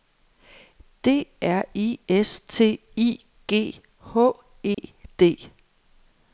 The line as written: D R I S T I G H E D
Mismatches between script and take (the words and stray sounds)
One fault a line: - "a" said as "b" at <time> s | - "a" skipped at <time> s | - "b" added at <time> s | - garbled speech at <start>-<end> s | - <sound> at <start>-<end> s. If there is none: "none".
- dropout at 4.7-4.8 s